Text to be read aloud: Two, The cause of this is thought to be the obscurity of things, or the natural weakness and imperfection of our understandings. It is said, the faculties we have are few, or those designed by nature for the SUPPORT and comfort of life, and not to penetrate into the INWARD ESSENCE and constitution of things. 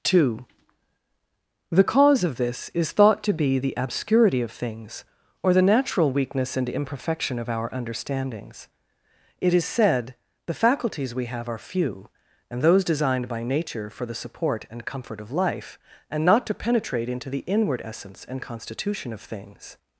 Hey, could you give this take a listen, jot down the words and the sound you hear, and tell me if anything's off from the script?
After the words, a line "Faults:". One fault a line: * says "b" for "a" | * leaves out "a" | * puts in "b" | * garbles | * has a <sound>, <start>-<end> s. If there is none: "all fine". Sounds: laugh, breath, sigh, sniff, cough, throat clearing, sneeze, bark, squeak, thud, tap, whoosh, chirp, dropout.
Two, The cause of this is thought to be the obscurity of things, or the natural weakness and imperfection of our understandings. It is said, the faculties we have are few, and those designed by nature for the SUPPORT and comfort of life, and not to penetrate into the INWARD ESSENCE and constitution of things.
Faults:
* says "and" for "or"